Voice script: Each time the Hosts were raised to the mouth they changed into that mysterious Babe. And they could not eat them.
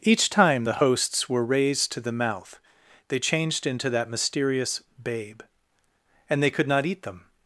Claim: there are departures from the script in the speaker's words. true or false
false